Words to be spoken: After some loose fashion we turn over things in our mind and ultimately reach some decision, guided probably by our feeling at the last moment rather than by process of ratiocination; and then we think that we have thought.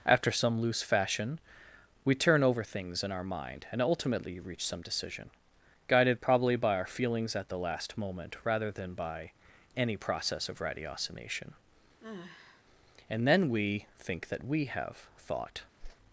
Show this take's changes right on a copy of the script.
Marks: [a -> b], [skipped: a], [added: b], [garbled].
After some loose fashion we turn over things in our mind and ultimately reach some decision, guided probably by our [feeling -> feelings] at the last moment rather than by [added: any] process of ratiocination; and then we think that we have thought.